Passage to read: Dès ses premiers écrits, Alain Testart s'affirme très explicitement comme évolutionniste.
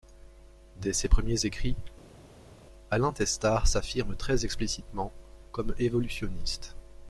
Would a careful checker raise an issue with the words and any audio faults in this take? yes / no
no